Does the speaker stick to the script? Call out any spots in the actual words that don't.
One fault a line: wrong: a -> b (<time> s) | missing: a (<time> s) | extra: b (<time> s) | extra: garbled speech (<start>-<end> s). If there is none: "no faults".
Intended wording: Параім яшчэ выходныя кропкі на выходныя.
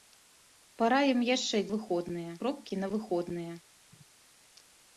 no faults